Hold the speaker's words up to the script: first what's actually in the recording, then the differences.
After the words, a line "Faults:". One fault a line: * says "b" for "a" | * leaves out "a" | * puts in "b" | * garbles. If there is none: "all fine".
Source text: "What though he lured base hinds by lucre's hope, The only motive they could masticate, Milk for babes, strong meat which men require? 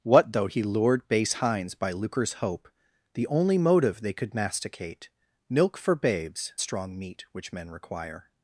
"What though he lured base hinds by lucre's hope, The only motive they could masticate, Milk for babes, strong meat which men require?
Faults:
all fine